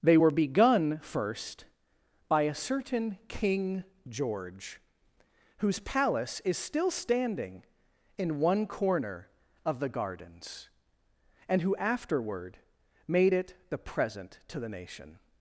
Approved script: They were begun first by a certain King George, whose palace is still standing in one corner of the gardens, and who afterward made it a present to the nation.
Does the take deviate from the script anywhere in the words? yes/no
yes